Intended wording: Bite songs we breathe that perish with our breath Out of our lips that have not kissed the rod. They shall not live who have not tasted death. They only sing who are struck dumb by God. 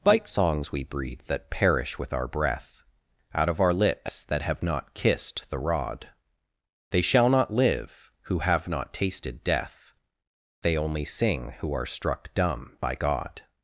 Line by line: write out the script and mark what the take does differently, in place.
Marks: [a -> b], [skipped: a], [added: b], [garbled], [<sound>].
Bite songs we breathe that perish with our breath Out of our lips that have not kissed the rod. They shall not live who have not tasted death. They only sing who are struck dumb by God.